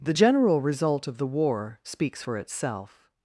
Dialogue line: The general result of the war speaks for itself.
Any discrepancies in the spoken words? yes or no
no